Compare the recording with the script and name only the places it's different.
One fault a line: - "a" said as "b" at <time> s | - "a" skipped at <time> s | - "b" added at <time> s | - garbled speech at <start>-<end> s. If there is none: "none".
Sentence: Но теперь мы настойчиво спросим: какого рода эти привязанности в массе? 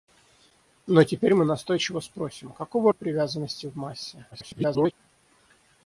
- "рода эти" skipped at 2.9 s
- garbled speech at 4.3-4.9 s